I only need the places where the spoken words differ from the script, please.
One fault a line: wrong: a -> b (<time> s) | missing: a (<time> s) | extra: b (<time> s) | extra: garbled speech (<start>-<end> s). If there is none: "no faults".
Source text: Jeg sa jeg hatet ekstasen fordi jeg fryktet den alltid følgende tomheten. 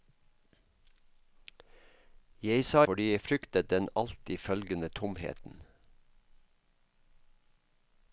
missing: jeg hatet ekstasen (2.8 s)